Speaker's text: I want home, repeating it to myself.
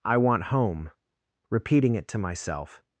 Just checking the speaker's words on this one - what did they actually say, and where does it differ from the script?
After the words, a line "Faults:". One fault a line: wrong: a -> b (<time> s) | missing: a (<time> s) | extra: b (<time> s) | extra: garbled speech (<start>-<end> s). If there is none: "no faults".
I want home, repeating it to myself.
Faults:
no faults